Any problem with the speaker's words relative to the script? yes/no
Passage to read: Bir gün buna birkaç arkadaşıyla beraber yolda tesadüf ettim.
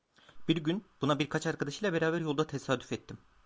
no